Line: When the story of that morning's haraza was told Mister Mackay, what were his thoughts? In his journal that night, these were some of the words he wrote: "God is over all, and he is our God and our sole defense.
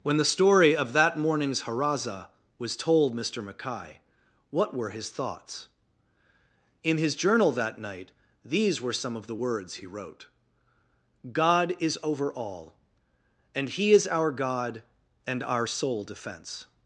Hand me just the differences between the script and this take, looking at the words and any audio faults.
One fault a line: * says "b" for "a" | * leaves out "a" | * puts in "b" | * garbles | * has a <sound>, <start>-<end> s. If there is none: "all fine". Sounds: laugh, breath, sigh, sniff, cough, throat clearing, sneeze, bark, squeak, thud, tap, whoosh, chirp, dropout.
all fine